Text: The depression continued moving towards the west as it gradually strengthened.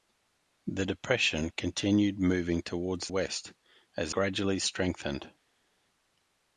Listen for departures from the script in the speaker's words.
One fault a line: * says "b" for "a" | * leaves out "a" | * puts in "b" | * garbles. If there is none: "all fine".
* leaves out "the"
* leaves out "it"